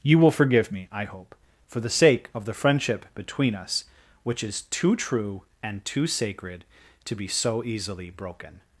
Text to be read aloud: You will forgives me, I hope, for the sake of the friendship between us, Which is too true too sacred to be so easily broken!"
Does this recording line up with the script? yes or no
no